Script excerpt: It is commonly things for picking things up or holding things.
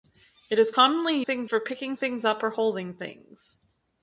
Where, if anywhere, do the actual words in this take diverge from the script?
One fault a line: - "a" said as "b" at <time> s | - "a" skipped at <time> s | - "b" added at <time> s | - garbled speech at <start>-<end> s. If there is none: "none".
none